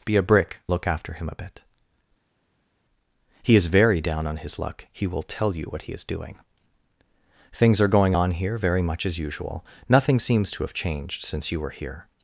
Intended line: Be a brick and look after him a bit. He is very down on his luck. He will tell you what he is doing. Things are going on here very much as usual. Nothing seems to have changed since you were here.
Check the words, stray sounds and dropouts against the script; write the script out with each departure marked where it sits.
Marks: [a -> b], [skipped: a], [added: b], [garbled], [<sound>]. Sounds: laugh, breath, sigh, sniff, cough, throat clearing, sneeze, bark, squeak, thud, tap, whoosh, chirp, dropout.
Be a brick [skipped: and] look after him a bit. He is very down on his luck. He will tell you what he is doing. Things are going on here very much as usual. Nothing seems to have changed since you were here.